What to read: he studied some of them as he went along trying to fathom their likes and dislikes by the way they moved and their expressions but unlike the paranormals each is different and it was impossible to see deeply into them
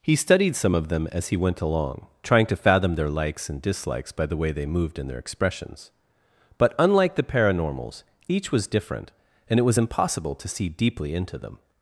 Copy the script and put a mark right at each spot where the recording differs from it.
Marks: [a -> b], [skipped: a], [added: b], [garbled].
he studied some of them as he went along trying to fathom their likes and dislikes by the way they moved and their expressions but unlike the paranormals each [is -> was] different and it was impossible to see deeply into them